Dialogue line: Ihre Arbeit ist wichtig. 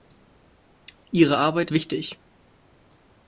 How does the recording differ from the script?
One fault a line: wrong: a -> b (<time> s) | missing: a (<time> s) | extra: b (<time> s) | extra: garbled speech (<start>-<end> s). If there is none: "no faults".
missing: ist (1.7 s)